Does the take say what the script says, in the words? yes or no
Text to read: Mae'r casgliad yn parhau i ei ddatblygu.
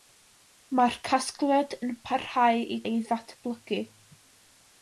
yes